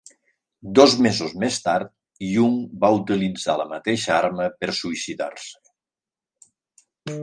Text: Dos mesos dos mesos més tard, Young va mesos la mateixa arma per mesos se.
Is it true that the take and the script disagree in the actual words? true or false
true